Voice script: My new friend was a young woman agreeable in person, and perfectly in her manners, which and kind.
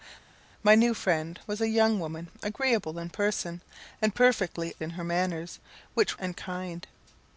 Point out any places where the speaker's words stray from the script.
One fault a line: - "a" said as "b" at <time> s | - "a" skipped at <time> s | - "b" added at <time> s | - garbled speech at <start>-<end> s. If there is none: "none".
none